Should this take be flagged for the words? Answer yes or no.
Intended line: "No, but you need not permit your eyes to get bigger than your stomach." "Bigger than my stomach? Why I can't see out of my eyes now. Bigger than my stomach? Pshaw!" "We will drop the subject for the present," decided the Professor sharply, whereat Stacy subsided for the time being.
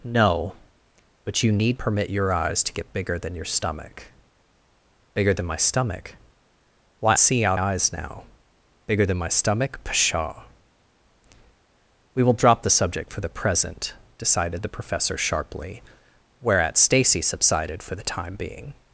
yes